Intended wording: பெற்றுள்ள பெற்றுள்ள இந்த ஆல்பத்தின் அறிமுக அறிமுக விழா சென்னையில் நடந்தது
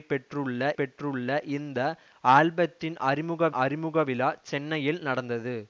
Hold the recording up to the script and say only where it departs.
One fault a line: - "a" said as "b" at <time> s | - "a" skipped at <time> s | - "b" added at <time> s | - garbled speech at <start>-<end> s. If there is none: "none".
none